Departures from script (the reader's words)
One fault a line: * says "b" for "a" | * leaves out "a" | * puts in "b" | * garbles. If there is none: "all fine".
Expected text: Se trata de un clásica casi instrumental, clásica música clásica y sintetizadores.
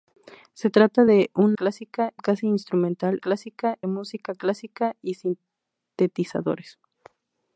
all fine